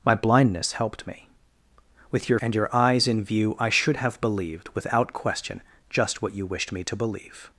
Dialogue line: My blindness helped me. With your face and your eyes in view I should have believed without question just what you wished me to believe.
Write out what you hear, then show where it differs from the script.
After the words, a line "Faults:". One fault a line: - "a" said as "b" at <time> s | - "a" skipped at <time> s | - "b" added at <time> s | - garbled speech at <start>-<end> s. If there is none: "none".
My blindness helped me. With your and your eyes in view I should have believed without question just what you wished me to believe.
Faults:
- "face" skipped at 2.4 s